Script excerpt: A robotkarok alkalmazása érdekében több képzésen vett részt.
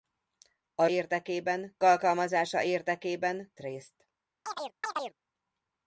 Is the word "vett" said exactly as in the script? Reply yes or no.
no